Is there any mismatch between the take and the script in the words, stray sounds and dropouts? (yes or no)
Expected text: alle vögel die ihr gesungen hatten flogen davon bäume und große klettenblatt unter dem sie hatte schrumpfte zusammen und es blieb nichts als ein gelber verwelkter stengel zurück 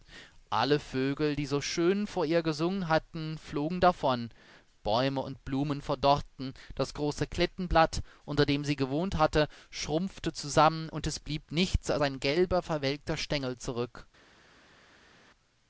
yes